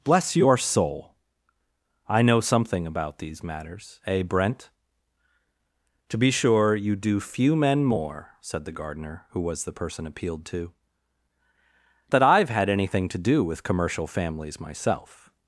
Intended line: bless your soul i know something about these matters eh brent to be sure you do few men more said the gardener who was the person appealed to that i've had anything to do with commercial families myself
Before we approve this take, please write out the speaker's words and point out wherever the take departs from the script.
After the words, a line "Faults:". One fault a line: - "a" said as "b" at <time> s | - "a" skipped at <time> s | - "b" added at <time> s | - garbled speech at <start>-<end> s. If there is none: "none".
bless your soul i know something about these matters eh brent to be sure you do few men more said the gardener who was the person appealed to that i've had anything to do with commercial families myself
Faults:
none